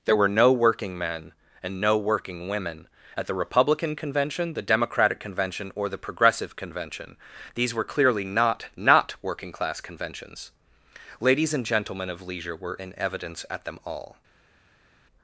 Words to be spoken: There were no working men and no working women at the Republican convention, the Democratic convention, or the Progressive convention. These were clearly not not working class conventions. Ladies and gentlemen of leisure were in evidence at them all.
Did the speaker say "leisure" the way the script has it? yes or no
yes